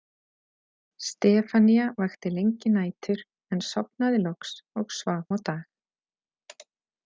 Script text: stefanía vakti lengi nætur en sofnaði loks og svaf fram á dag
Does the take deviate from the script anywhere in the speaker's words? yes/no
yes